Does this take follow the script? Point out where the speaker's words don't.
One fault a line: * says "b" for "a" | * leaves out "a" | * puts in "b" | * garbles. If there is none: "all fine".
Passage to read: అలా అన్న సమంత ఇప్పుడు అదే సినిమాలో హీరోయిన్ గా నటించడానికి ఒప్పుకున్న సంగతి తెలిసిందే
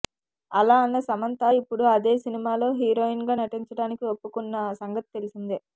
all fine